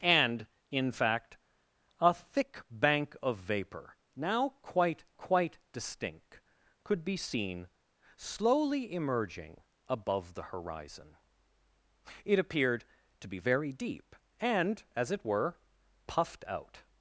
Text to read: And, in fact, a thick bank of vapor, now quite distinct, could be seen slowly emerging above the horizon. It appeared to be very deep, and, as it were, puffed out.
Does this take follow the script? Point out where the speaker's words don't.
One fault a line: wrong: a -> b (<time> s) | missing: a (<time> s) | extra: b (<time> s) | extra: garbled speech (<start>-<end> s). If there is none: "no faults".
extra: quite (5.2 s)